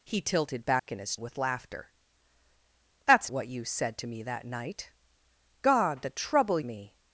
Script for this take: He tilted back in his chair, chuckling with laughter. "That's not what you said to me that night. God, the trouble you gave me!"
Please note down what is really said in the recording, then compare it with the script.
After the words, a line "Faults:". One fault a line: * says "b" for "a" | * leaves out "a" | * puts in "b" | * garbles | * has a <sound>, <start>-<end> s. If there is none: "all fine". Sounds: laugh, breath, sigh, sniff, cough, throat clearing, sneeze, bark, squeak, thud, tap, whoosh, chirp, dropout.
He tilted back in his with laughter. "That's what you said to me that night. God, the trouble me!"
Faults:
* has a dropout, 0.8-0.9 s
* leaves out "chair chuckling"
* leaves out "not"
* leaves out "you gave"